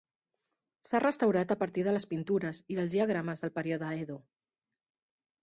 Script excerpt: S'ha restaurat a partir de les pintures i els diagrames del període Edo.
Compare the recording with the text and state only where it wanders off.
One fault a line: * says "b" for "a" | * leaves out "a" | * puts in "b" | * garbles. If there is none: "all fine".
all fine